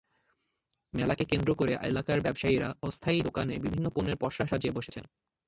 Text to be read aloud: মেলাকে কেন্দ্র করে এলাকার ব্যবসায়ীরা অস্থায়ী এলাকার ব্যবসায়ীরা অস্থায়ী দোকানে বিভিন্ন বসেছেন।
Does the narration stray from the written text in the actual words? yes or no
yes